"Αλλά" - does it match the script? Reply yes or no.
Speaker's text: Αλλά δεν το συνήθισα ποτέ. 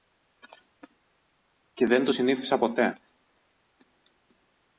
no